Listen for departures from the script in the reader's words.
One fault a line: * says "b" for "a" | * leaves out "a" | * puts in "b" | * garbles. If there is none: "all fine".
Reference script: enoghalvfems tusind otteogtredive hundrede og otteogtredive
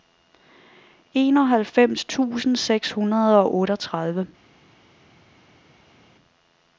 * says "seks" for "otteogtredive"